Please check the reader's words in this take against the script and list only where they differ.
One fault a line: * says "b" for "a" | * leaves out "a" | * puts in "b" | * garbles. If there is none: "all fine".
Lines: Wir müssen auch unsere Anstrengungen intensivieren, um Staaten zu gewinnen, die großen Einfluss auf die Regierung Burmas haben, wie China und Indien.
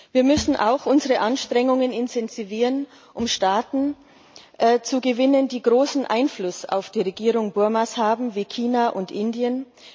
all fine